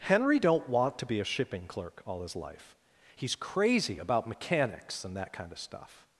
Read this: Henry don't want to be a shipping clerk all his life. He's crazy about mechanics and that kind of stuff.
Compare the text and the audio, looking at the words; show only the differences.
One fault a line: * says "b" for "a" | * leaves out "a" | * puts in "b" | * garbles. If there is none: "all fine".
all fine